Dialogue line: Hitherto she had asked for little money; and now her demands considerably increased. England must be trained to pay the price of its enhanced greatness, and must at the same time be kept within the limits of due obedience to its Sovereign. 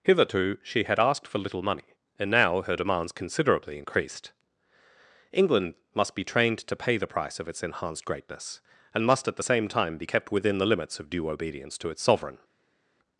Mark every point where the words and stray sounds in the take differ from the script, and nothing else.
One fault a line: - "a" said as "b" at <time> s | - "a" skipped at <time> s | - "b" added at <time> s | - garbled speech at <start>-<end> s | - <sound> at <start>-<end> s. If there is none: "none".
none